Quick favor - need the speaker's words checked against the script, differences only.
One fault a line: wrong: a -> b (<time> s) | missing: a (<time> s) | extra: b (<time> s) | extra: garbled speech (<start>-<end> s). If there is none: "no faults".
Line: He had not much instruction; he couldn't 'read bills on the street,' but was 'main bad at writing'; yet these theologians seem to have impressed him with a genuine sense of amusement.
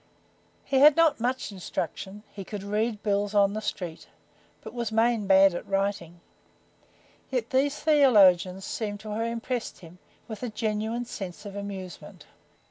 wrong: couldn't -> could (2.4 s)